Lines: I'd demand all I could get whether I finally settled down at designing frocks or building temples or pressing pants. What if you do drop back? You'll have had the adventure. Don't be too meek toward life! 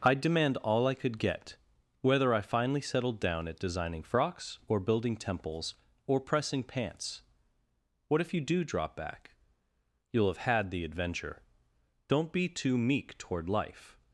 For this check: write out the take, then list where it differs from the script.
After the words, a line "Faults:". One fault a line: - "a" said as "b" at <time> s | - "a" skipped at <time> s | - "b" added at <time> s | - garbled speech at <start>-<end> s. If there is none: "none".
I'd demand all I could get whether I finally settled down at designing frocks or building temples or pressing pants. What if you do drop back? You'll have had the adventure. Don't be too meek toward life!
Faults:
none